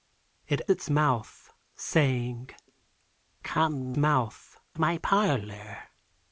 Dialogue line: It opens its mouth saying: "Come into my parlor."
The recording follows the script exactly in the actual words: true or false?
false